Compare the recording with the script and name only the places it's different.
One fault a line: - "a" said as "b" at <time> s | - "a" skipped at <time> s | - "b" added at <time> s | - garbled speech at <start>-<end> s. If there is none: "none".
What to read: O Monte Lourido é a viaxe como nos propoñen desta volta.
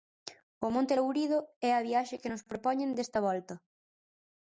- "como" said as "que" at 2.2 s